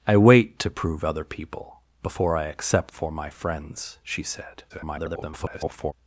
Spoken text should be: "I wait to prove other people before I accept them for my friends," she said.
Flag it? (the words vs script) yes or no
yes